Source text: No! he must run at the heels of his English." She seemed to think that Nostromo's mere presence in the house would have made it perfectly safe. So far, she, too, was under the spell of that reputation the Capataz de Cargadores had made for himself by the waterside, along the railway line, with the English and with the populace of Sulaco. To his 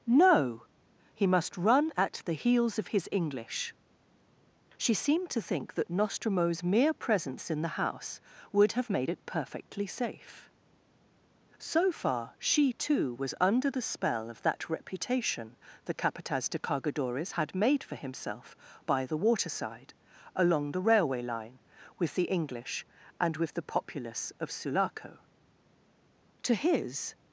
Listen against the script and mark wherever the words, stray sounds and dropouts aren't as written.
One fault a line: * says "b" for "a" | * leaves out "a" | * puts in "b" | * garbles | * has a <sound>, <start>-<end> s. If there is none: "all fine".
all fine